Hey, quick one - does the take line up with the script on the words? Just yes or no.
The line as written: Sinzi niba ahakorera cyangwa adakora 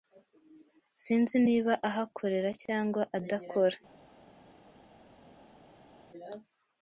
yes